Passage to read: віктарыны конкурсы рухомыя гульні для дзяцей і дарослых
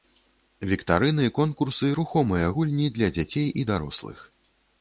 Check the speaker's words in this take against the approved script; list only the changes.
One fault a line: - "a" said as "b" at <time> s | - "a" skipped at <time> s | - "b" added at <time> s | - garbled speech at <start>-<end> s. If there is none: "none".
none